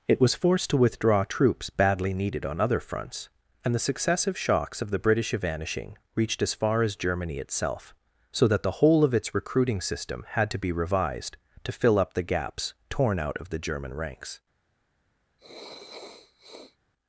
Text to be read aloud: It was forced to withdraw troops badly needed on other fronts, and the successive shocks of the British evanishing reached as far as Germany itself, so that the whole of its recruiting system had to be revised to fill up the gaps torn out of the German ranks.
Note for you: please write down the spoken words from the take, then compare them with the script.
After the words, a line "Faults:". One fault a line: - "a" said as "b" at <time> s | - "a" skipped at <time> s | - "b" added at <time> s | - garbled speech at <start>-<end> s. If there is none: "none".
It was forced to withdraw troops badly needed on other fronts, and the successive shocks of the British evanishing reached as far as Germany itself, so that the whole of its recruiting system had to be revised to fill up the gaps torn out of the German ranks.
Faults:
none